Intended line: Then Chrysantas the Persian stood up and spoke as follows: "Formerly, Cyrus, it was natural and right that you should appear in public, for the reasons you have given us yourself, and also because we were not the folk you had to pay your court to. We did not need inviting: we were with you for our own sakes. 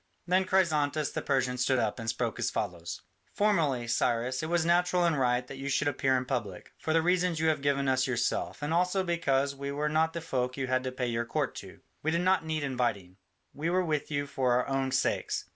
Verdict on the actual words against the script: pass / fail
pass